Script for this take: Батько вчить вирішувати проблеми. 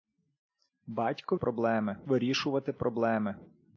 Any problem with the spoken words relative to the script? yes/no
yes